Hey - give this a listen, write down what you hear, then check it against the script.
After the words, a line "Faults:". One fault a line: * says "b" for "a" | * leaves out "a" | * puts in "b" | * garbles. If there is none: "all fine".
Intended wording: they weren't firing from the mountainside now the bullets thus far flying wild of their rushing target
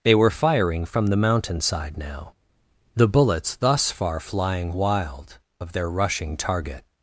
they were firing from the mountainside now the bullets thus far flying wild of their rushing target
Faults:
* says "were" for "weren't"